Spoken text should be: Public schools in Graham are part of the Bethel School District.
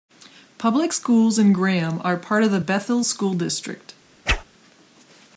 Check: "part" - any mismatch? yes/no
no